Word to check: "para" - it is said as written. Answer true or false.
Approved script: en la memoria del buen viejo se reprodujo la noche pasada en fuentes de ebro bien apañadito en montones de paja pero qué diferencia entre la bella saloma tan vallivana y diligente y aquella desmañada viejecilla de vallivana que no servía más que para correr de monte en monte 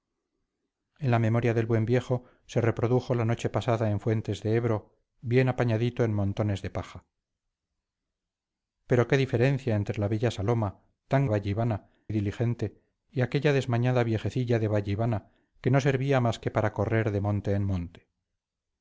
true